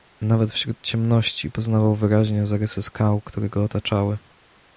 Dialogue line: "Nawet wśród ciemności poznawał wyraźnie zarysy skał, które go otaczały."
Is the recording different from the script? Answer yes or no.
no